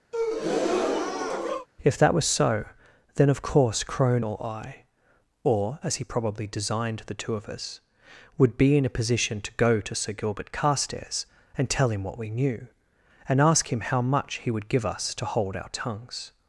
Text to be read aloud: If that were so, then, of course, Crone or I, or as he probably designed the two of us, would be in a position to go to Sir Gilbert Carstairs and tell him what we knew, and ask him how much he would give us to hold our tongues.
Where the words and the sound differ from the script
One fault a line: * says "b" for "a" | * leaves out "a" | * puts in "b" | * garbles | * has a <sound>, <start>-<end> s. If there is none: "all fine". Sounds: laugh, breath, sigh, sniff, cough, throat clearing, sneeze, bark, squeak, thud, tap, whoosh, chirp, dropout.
* has a breath, 0.1-1.7 s
* says "was" for "were"